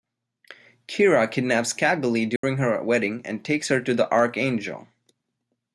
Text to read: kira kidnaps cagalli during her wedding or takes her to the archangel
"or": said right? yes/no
no